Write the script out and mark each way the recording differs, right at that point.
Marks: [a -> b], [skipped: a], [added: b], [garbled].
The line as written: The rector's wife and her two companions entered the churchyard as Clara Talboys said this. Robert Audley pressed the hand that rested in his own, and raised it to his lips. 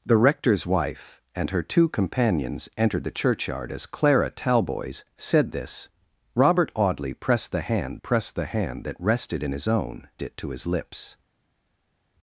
The rector's wife and her two companions entered the churchyard as Clara Talboys said this. Robert Audley pressed the hand [added: pressed the hand] that rested in his own, [skipped: and raised] it to his lips.